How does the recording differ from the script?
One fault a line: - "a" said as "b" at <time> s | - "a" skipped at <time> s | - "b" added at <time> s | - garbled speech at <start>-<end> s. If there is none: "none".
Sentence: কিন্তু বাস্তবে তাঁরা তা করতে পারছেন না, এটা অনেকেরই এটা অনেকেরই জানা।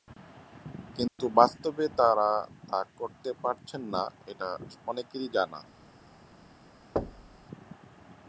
- "এটা অনেকেরই" skipped at 5.3 s